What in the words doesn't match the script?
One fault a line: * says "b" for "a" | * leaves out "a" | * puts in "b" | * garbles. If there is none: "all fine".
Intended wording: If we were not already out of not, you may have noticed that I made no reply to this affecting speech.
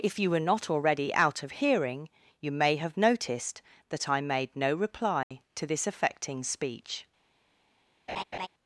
* says "you" for "we"
* says "hearing" for "not"